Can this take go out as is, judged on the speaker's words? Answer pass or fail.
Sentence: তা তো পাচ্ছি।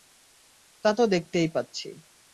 fail